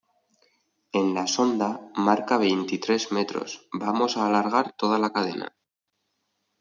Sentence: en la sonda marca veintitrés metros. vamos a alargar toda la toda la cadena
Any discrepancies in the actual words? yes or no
yes